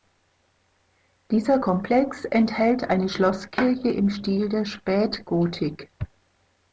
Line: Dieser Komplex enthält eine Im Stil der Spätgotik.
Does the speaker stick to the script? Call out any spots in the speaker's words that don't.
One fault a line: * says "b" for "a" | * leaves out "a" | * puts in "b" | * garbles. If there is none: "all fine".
* puts in "Schlosskirche"